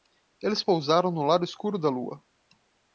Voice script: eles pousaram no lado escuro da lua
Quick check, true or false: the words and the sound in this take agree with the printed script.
true